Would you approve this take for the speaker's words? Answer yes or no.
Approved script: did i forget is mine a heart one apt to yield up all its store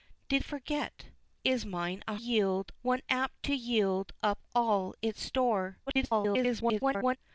no